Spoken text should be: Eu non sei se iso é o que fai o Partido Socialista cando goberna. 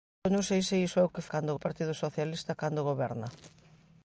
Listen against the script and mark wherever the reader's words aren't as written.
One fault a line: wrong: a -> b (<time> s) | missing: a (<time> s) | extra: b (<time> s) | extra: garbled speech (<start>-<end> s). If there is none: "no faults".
wrong: fai -> cando (1.3 s)